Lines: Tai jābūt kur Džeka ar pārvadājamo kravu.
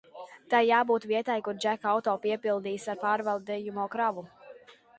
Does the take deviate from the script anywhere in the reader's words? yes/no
yes